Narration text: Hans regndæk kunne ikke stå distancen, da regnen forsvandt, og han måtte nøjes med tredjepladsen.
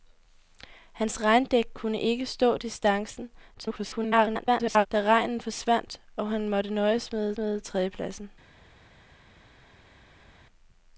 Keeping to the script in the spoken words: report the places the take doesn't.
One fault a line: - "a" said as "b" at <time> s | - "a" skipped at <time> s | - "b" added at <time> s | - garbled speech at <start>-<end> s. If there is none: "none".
- garbled speech at 3.5-4.9 s
- "med" added at 7.4 s